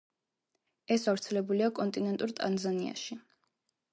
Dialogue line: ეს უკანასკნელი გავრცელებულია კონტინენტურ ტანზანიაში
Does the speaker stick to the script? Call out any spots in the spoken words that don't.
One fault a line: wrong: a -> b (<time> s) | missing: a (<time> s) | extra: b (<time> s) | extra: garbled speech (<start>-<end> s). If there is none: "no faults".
missing: უკანასკნელი (1.0 s)